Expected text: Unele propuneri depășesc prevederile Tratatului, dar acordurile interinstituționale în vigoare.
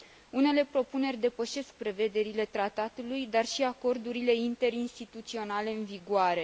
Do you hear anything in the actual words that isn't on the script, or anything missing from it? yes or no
yes